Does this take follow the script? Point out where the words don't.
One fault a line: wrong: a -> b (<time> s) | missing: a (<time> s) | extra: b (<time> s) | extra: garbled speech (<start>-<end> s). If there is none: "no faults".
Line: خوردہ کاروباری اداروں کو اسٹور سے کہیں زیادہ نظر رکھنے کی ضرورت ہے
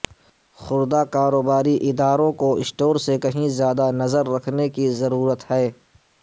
no faults